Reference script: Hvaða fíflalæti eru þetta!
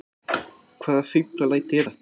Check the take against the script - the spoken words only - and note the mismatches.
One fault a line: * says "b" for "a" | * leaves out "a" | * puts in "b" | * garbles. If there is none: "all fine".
* leaves out "eru"